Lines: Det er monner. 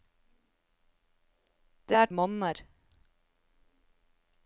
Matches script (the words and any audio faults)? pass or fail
pass